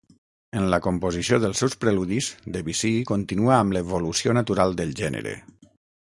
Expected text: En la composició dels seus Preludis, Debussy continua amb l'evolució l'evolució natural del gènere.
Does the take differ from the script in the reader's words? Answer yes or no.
yes